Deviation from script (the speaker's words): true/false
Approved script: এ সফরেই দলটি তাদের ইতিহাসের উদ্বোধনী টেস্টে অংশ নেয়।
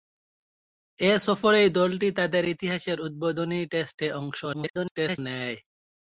true